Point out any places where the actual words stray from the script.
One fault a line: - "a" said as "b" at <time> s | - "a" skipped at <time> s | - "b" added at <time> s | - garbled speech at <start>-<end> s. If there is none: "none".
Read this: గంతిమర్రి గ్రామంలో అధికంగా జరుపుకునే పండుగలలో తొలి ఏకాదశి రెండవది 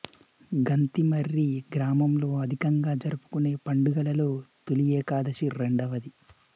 none